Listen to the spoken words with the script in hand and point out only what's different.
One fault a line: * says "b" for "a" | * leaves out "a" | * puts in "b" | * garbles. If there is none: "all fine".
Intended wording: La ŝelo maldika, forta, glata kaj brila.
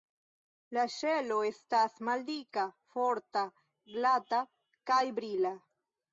* puts in "estas"